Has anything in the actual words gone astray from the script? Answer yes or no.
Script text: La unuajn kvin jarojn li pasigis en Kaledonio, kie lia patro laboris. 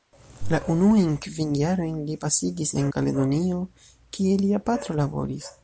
no